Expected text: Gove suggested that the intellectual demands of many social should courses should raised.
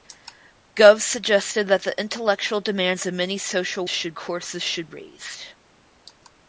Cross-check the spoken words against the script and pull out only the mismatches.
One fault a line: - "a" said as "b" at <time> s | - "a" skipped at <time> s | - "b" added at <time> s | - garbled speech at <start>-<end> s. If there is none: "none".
none